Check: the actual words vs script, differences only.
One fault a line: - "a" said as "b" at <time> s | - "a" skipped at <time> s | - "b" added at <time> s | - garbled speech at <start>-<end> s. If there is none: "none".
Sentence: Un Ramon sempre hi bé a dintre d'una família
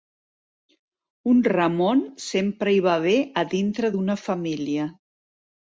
- "va" added at 2.9 s